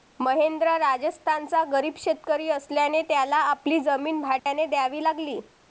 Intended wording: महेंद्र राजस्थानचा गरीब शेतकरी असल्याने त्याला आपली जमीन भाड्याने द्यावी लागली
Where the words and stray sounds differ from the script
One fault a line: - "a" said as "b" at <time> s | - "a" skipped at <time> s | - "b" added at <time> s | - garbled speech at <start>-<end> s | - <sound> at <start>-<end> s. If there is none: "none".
- dropout at 4.4-4.5 s